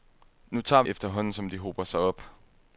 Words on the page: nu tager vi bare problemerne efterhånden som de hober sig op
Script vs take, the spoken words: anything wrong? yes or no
yes